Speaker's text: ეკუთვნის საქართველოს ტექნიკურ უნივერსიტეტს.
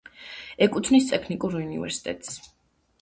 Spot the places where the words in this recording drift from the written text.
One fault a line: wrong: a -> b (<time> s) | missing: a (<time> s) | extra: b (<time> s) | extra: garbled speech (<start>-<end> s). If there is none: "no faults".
missing: საქართველოს (1.1 s)